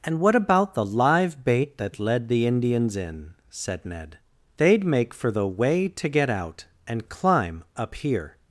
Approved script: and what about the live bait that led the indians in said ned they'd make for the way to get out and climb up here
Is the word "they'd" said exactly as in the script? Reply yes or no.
yes